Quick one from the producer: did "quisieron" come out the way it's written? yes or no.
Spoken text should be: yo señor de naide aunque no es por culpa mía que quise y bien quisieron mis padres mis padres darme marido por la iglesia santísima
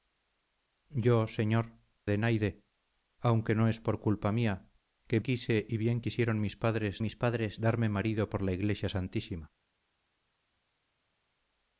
yes